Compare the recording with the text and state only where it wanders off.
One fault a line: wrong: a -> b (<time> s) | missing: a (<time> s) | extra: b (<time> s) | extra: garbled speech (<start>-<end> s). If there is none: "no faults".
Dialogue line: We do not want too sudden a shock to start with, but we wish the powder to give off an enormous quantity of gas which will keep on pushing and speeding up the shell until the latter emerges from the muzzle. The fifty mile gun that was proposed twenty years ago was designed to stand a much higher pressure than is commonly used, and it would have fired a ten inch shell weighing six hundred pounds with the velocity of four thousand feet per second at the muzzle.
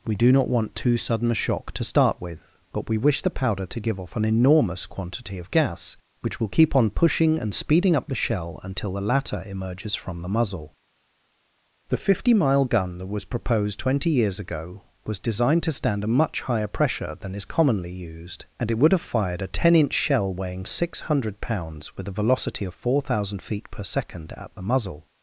wrong: the -> a (22.1 s)